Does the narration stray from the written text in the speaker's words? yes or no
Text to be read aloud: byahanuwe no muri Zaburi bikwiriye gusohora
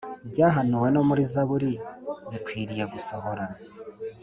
no